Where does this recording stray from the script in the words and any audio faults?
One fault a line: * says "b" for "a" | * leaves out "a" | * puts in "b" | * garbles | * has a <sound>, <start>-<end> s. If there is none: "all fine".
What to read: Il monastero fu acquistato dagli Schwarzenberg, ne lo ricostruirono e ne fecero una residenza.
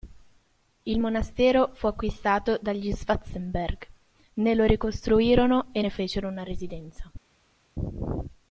all fine